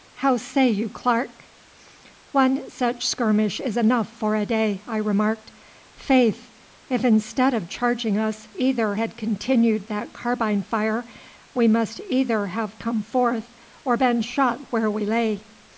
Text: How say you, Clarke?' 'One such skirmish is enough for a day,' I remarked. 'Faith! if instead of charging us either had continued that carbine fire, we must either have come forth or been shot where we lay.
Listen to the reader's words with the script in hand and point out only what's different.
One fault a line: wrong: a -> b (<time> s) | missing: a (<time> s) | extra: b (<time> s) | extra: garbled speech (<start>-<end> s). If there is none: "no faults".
no faults